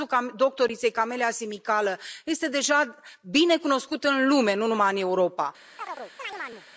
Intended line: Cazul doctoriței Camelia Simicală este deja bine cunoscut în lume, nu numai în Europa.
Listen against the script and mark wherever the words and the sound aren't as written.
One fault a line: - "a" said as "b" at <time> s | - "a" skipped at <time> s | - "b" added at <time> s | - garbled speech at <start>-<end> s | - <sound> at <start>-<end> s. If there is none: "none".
- chirp at 5.8-6.7 s